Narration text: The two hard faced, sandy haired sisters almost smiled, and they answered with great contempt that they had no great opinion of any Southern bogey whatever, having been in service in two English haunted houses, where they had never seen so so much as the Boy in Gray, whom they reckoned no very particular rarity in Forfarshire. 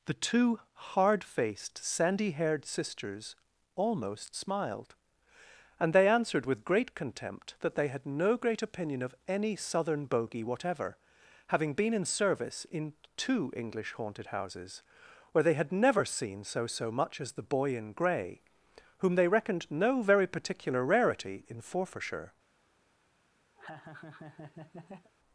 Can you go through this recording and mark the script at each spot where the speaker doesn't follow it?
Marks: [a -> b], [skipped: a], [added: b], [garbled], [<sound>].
The two hard faced, sandy haired sisters almost smiled, and they answered with great contempt that they had no great opinion of any Southern bogey whatever, having been in service in two English haunted houses, where they had never seen so so much as the Boy in Gray, whom they reckoned no very particular rarity in Forfarshire. [laugh]